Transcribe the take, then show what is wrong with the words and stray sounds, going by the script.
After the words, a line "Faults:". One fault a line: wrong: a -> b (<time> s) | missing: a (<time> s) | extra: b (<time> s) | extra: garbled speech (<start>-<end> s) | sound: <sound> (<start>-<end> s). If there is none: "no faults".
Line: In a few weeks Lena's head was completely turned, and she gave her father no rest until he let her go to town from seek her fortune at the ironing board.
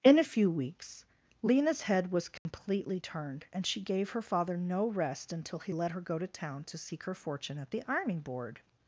In a few weeks Lena's head was completely turned, and she gave her father no rest until he let her go to town to seek her fortune at the ironing board.
Faults:
sound: dropout (2.4-2.5 s)
wrong: from -> to (6.6 s)